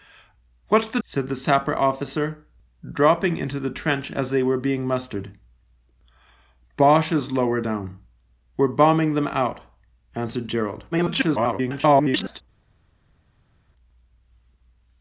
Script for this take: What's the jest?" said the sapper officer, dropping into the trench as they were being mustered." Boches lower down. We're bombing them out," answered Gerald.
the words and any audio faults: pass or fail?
fail